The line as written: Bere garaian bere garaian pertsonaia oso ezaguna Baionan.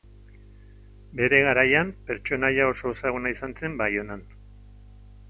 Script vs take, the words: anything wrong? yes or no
yes